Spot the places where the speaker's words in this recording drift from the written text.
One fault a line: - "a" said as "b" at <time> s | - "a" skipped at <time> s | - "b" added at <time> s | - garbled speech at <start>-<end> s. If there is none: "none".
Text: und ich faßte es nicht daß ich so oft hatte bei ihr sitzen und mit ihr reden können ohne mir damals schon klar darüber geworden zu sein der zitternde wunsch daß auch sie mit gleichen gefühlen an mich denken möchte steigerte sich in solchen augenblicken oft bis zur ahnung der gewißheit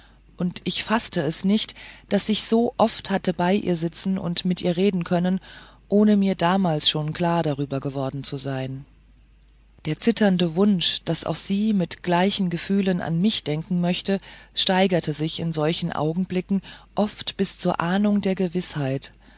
none